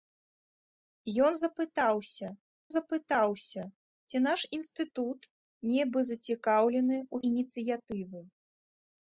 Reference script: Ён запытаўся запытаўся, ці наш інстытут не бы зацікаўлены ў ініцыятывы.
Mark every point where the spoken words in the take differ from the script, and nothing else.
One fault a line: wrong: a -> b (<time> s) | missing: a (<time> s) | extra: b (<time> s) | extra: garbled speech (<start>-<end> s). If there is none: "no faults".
no faults